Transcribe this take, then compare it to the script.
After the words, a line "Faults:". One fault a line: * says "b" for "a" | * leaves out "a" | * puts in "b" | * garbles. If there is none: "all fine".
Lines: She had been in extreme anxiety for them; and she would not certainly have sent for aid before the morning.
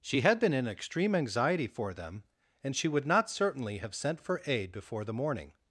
She had been in extreme anxiety for them; and she would not certainly have sent for aid before the morning.
Faults:
all fine